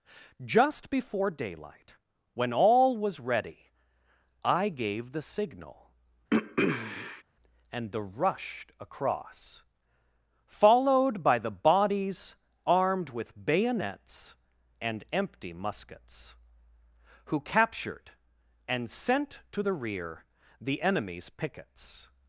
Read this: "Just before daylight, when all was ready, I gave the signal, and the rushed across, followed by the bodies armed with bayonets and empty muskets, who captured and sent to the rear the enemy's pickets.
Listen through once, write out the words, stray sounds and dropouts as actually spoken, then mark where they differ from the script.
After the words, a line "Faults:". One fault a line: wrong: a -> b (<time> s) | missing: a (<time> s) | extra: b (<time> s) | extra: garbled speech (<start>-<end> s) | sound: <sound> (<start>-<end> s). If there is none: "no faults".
"Just before daylight, when all was ready, I gave the signal, and the rushed across, followed by the bodies armed with bayonets and empty muskets, who captured and sent to the rear the enemy's pickets.
Faults:
sound: throat clearing (6.3-7.2 s)